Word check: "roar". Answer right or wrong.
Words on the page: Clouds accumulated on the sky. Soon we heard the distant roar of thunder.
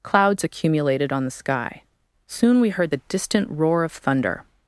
right